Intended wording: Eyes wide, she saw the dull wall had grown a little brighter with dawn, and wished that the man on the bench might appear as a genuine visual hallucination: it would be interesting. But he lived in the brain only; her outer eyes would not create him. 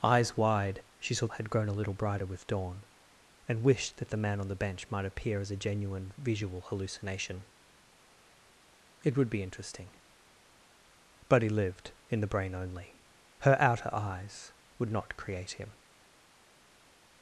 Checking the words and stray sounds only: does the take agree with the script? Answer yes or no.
no